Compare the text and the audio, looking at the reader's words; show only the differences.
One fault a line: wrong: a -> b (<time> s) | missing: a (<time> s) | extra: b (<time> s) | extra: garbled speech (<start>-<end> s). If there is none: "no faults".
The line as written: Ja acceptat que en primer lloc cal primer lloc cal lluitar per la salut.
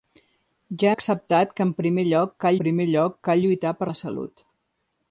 no faults